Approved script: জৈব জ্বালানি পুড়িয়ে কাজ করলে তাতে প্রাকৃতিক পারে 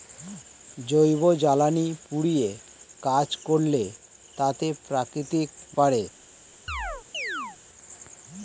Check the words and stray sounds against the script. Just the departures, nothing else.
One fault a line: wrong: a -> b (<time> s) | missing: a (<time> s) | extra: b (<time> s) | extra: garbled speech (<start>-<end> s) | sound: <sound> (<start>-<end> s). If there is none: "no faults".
sound: chirp (6.7-7.6 s)